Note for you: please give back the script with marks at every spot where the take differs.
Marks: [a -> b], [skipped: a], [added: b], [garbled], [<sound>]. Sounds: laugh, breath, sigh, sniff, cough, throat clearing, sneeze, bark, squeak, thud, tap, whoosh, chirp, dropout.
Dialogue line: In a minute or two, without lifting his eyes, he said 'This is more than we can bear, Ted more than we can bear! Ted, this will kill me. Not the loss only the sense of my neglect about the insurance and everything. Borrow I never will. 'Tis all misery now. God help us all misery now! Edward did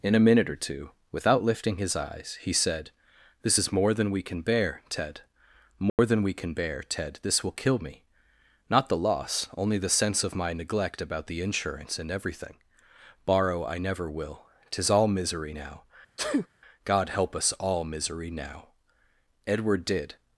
In a minute or two, without lifting his eyes, he said 'This is more than we can bear, Ted more [dropout] than we can bear! Ted, this will kill me. Not the loss only the sense of my neglect about the insurance and everything. Borrow I never will. 'Tis all misery now. [sneeze] God help us all misery now! Edward did